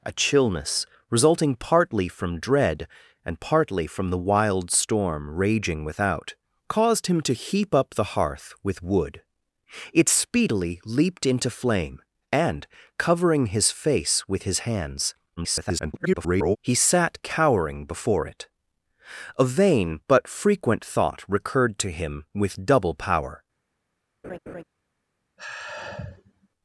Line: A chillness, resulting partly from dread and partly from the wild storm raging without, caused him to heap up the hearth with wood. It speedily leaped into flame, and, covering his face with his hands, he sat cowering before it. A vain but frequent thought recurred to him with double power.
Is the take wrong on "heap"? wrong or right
right